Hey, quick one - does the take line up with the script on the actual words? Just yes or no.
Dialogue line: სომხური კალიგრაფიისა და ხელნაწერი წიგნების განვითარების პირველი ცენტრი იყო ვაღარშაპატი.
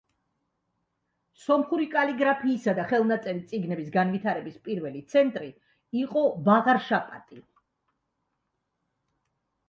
yes